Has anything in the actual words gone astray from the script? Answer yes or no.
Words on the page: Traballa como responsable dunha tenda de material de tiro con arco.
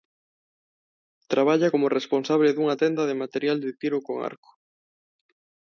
no